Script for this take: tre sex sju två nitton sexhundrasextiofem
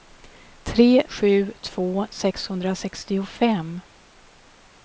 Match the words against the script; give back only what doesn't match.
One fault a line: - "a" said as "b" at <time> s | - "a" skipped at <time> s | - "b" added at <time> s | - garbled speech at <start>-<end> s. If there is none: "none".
- "sex" skipped at 1.0 s
- "nitton" skipped at 2.1 s